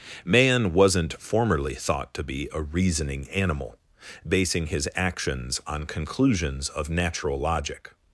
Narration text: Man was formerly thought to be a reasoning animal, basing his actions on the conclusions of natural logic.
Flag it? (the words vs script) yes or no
yes